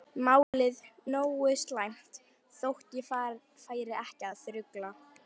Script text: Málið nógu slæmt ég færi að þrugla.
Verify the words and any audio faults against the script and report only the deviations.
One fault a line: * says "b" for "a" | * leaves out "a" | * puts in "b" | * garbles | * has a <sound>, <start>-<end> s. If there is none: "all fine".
* has a dropout, 0.4-0.5 s
* puts in "þótt"
* puts in "ekki"